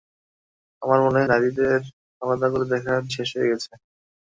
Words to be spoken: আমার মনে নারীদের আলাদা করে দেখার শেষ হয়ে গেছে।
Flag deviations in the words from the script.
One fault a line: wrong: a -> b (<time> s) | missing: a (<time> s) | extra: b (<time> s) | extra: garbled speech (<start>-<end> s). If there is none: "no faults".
no faults